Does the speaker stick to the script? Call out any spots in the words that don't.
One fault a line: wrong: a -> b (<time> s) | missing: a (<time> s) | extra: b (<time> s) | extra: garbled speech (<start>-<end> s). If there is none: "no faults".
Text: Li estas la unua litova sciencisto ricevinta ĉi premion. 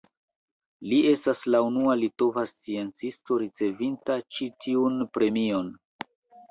extra: tiun (4.7 s)